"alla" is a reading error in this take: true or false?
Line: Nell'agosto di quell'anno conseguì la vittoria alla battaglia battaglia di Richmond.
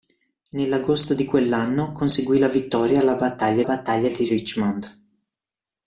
false